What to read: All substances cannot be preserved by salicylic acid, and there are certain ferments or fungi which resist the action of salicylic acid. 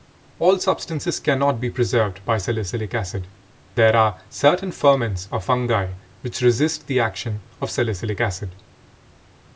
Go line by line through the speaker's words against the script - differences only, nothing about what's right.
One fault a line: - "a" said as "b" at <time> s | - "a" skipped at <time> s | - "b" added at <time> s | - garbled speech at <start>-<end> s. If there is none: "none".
- "and" skipped at 3.3 s